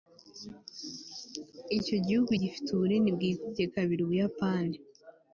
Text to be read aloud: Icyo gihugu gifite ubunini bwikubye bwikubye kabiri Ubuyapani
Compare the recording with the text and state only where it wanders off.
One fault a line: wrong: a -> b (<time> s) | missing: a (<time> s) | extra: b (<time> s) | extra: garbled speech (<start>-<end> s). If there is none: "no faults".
missing: bwikubye (3.6 s)